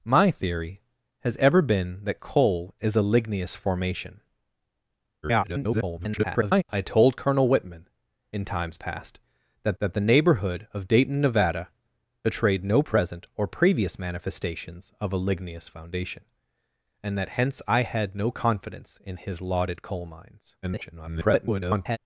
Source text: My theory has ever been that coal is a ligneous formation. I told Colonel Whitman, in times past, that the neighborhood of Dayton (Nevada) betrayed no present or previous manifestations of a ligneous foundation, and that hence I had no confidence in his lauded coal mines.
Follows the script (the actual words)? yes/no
no